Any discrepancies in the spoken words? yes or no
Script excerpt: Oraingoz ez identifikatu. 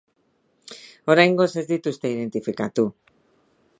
yes